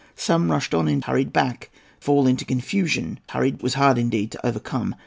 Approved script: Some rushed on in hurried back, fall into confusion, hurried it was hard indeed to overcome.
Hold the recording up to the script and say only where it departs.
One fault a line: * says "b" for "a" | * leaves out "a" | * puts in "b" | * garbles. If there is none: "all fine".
all fine